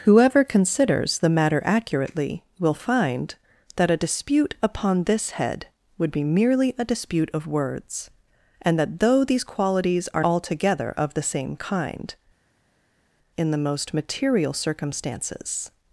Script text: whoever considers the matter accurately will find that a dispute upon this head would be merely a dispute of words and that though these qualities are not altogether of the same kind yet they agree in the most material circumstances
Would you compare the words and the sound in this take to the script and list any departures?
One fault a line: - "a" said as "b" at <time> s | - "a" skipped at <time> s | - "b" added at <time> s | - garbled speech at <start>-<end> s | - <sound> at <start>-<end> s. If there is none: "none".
- "not" skipped at 10.2 s
- "yet they agree" skipped at 12.2 s